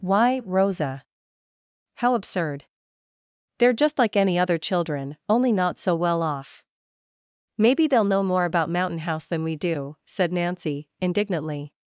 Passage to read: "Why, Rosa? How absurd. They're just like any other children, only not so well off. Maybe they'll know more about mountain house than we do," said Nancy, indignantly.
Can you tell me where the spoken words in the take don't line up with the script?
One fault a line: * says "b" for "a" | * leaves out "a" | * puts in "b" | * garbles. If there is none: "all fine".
all fine